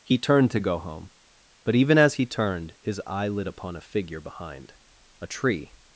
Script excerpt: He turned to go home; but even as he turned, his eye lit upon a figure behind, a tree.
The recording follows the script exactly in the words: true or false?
true